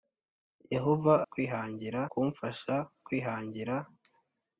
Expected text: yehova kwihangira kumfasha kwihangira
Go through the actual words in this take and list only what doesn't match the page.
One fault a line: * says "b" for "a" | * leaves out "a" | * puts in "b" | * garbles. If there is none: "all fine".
all fine